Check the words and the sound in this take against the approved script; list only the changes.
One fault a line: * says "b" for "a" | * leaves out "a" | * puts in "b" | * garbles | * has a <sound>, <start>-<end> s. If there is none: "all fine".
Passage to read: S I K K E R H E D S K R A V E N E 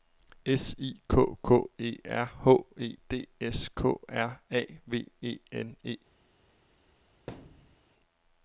* has a thud, 7.3-7.8 s